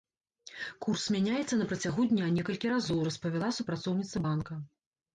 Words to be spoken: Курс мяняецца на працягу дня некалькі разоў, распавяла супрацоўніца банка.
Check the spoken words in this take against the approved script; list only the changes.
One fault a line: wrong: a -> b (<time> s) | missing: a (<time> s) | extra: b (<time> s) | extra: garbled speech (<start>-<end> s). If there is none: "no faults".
no faults